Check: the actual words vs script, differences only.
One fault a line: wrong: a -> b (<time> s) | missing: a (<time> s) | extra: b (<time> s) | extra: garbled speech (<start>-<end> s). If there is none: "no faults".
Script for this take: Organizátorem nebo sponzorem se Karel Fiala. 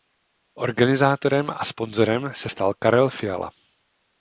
wrong: nebo -> a (1.5 s)
extra: stal (2.5 s)